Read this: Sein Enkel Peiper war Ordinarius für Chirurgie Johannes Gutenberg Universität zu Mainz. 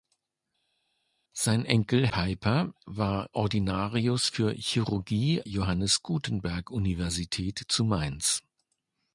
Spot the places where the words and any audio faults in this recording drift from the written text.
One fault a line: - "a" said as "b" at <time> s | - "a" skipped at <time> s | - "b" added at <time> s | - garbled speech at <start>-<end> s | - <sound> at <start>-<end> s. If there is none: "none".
none